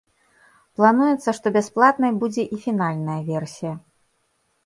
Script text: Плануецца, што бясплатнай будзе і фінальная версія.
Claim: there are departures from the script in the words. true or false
false